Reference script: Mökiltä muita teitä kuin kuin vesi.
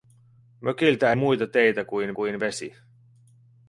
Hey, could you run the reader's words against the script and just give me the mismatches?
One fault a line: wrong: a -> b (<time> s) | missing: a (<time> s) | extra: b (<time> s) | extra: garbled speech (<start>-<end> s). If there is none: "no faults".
no faults